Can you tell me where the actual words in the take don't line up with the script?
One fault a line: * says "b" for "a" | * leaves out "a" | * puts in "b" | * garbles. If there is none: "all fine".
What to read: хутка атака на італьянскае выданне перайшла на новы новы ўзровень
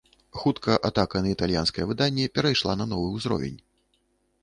* leaves out "новы"